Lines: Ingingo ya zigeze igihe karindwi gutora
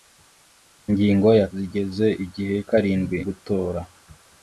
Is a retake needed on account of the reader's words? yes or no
no